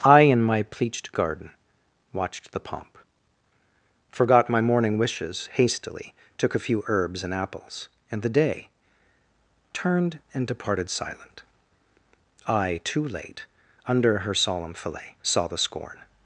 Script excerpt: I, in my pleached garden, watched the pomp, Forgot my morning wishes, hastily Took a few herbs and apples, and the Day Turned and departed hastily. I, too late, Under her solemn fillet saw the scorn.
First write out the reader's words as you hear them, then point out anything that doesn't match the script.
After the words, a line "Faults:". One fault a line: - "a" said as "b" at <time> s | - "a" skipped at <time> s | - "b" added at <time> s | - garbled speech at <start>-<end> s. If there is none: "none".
I, in my pleached garden, watched the pomp, Forgot my morning wishes, hastily Took a few herbs and apples, and the Day Turned and departed silent. I, too late, Under her solemn fillet saw the scorn.
Faults:
- "hastily" said as "silent" at 10.9 s